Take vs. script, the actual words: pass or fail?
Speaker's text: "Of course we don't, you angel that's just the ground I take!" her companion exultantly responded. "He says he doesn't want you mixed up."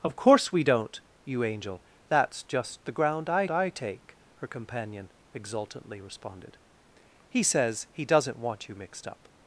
fail